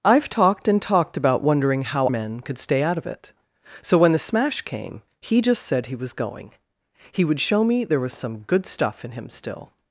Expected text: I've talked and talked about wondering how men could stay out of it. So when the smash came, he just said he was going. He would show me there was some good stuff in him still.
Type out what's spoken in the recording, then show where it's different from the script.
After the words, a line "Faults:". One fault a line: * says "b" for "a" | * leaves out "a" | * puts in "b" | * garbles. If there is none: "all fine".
I've talked and talked about wondering how men could stay out of it. So when the smash came, he just said he was going. He would show me there was some good stuff in him still.
Faults:
all fine